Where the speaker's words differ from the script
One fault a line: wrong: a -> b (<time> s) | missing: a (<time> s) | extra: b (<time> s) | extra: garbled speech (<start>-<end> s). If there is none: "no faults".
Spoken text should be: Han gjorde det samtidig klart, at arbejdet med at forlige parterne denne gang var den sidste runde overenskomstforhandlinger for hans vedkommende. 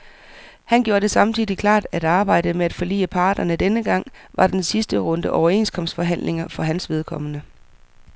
no faults